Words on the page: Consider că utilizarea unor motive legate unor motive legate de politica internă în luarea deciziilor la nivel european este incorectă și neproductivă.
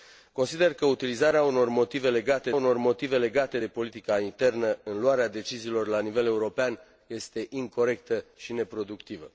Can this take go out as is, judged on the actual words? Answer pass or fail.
pass